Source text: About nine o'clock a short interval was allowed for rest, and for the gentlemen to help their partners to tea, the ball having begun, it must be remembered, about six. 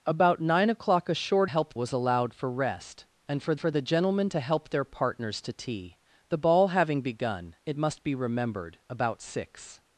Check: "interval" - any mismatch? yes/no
yes